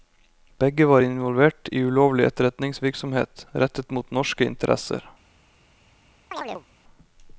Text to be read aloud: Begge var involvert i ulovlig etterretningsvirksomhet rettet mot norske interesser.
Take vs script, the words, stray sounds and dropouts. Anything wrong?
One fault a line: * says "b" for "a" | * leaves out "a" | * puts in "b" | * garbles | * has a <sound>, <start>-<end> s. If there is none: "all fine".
* has a chirp, 6.3-6.7 s